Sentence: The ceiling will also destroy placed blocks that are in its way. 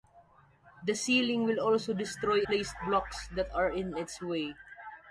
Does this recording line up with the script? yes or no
yes